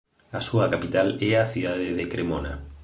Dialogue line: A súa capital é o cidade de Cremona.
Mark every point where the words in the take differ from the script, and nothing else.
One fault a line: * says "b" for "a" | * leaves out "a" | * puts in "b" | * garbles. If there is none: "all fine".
* says "a" for "o"